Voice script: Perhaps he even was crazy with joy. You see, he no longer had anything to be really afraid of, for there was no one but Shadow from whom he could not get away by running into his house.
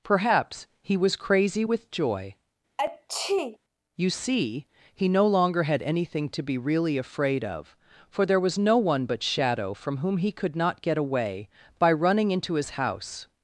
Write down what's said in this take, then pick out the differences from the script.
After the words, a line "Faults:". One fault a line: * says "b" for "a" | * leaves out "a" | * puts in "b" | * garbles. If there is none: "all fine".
Perhaps he was crazy with joy. You see, he no longer had anything to be really afraid of, for there was no one but Shadow from whom he could not get away by running into his house.
Faults:
* leaves out "even"